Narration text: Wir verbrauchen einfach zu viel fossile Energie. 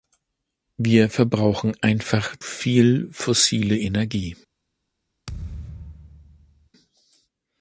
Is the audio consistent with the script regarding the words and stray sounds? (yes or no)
no